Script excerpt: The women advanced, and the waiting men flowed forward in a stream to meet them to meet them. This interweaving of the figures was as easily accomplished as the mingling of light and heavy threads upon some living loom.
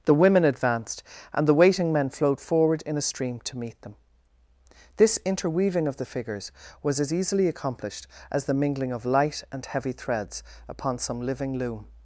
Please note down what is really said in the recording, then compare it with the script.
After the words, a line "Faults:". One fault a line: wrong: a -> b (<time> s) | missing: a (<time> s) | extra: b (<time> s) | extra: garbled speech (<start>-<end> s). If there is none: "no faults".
The women advanced, and the waiting men flowed forward in a stream to meet them. This interweaving of the figures was as easily accomplished as the mingling of light and heavy threads upon some living loom.
Faults:
missing: to meet them (4.0 s)